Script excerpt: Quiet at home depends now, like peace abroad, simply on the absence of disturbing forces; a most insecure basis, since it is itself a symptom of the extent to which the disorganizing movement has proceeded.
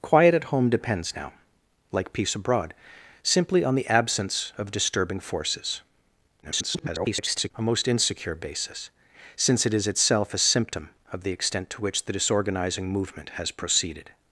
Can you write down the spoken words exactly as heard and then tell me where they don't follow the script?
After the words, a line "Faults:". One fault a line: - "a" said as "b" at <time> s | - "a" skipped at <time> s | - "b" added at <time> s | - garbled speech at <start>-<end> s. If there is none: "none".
Quiet at home depends now, like peace abroad, simply on the absence of disturbing forces; [garbled] a most insecure basis, since it is itself a symptom of the extent to which the disorganizing movement has proceeded.
Faults:
- garbled speech at 6.4-7.5 s